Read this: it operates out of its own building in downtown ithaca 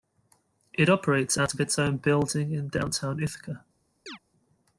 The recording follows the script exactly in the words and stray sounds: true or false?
false